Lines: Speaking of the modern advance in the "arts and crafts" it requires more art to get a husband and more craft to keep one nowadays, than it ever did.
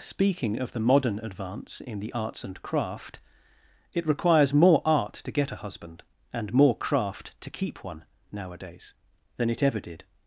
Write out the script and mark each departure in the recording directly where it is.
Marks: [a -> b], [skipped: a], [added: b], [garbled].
Speaking of the modern advance in the "arts and [crafts" -> craft] it requires more art to get a husband and more craft to keep one nowadays, than it ever did.